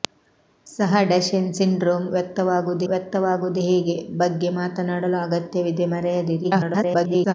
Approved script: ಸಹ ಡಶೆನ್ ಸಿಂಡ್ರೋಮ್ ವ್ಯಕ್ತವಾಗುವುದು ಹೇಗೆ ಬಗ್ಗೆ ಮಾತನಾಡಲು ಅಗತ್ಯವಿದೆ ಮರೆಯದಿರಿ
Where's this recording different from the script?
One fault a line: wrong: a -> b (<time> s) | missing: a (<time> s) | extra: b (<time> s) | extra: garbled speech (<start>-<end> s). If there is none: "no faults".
extra: ವ್ಯಕ್ತವಾಗುವುದು (2.9 s)
extra: garbled speech (6.4-7.3 s)